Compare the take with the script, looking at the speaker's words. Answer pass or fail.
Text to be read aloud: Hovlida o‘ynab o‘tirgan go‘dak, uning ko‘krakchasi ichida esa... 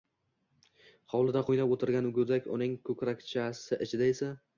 pass